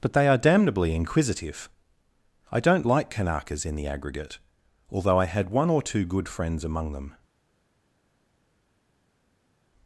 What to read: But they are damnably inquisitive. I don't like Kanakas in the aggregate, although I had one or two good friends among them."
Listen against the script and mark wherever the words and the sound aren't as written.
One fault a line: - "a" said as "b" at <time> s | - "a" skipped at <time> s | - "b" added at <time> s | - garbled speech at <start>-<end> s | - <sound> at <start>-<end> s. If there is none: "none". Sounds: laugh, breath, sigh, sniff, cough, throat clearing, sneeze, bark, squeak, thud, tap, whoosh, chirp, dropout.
none